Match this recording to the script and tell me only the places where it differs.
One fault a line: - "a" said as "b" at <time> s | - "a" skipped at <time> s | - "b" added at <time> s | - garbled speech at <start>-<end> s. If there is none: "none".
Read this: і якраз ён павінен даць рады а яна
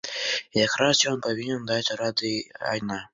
none